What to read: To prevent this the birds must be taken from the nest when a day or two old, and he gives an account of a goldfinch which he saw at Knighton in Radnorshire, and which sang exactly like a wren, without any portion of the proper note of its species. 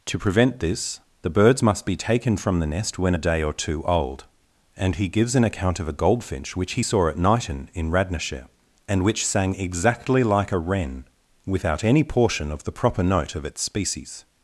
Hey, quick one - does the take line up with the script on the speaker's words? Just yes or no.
yes